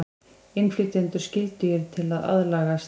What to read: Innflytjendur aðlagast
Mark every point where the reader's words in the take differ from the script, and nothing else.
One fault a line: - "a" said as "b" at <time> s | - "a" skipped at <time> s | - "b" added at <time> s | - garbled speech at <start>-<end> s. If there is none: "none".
- "skyldugir til að" added at 1.2 s